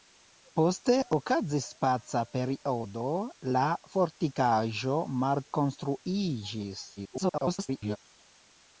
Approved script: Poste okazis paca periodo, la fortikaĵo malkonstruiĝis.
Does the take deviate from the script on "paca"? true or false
false